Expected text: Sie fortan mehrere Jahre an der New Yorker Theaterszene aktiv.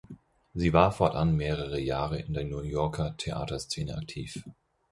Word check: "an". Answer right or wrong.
wrong